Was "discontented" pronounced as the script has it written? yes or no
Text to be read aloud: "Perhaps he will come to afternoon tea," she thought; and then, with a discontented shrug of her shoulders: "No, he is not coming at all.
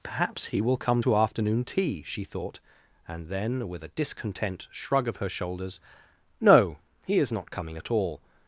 no